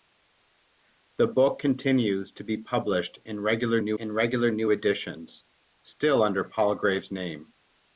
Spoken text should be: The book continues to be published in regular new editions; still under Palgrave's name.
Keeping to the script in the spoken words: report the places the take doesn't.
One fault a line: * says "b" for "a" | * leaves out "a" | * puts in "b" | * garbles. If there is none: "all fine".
* puts in "in regular new"